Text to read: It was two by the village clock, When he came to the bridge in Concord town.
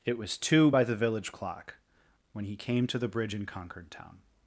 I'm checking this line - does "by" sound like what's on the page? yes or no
yes